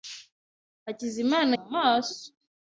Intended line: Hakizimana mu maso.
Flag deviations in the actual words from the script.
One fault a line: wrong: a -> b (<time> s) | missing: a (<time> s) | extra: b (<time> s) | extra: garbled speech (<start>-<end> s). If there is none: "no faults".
no faults